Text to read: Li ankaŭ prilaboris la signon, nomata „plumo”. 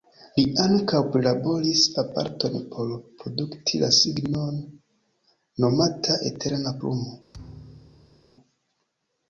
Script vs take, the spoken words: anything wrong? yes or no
yes